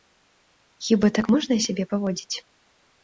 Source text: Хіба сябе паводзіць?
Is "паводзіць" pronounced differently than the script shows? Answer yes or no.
no